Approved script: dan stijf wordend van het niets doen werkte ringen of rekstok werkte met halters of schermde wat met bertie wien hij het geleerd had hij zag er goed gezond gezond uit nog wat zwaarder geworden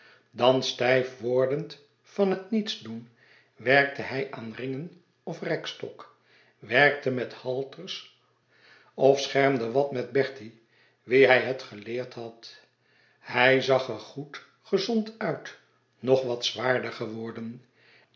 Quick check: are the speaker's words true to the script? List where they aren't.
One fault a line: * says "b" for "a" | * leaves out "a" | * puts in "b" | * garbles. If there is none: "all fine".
* puts in "hij aan"
* leaves out "gezond"